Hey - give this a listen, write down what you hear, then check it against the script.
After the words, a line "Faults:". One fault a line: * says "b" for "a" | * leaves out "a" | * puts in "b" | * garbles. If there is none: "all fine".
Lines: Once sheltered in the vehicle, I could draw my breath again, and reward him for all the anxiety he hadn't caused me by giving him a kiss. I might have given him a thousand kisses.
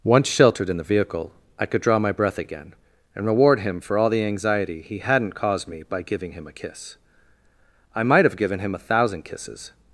Once sheltered in the vehicle, I could draw my breath again, and reward him for all the anxiety he hadn't caused me by giving him a kiss. I might have given him a thousand kisses.
Faults:
all fine